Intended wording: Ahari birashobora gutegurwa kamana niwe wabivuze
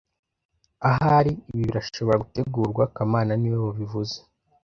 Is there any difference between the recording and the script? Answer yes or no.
yes